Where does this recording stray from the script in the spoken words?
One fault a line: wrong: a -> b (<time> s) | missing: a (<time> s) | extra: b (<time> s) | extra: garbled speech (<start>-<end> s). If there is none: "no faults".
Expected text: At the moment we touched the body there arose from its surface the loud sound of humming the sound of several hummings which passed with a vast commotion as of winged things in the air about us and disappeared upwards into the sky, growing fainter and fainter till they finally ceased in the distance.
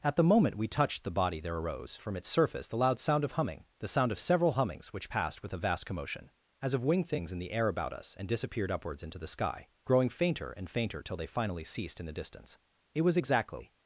extra: It was exactly (12.9 s)